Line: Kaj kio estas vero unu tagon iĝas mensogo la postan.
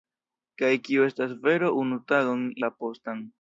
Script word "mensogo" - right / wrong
wrong